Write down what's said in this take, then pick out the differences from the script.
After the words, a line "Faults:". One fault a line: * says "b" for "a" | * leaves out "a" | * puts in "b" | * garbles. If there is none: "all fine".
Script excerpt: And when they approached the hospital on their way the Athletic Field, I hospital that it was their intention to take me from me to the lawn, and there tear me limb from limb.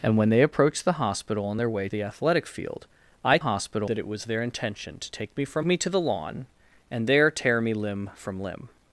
And when they approached the hospital on their way the Athletic Field, I hospital that it was their intention to take me from me to the lawn, and there tear me limb from limb.
Faults:
all fine